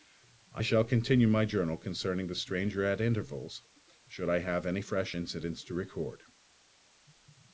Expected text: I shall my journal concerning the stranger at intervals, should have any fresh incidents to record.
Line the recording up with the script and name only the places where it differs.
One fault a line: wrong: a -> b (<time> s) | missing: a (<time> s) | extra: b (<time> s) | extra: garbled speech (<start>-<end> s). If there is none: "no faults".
extra: continue (0.8 s)
extra: I (4.3 s)